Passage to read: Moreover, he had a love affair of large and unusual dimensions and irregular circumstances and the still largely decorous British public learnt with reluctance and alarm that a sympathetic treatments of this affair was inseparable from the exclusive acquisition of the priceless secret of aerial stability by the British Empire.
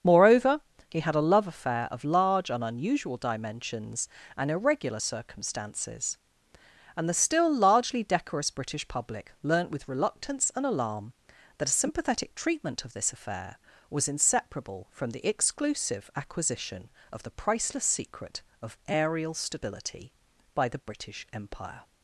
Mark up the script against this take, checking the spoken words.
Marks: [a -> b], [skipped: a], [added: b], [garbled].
Moreover, he had a love affair of large and unusual dimensions and irregular circumstances and the still largely decorous British public learnt with reluctance and alarm that a sympathetic [treatments -> treatment] of this affair was inseparable from the exclusive acquisition of the priceless secret of aerial stability by the British Empire.